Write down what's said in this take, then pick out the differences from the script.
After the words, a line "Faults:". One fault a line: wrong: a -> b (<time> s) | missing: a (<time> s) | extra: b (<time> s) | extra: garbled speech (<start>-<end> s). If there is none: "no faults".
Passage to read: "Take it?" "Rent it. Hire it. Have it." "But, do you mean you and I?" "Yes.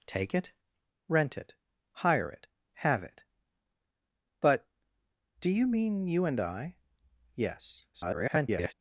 "Take it?" "Rent it. Hire it. Have it." "But, do you mean you and I?" "Yes. [garbled]
Faults:
extra: garbled speech (7.9-8.7 s)